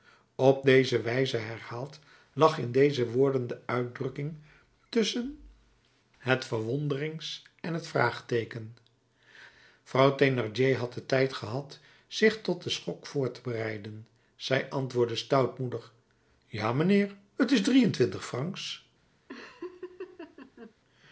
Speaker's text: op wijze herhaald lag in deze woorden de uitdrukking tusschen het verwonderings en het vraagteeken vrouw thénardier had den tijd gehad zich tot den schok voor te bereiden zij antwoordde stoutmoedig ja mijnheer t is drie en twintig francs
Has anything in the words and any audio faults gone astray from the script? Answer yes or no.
yes